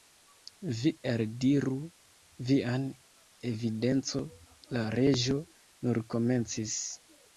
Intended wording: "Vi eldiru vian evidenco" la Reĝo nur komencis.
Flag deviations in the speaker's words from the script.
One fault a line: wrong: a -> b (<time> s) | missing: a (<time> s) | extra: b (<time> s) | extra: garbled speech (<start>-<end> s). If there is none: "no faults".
no faults